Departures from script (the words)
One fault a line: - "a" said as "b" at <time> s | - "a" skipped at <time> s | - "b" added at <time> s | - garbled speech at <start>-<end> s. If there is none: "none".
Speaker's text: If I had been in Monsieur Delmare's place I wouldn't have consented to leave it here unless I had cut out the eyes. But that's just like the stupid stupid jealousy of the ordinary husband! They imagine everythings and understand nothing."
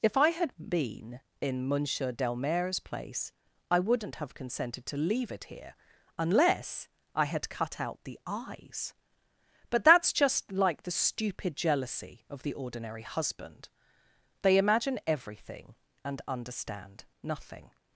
- "stupid" skipped at 11.6 s
- "everythings" said as "everything" at 15.1 s